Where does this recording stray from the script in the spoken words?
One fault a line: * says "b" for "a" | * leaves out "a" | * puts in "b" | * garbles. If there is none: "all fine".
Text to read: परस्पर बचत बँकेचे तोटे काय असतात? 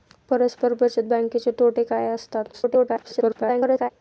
* garbles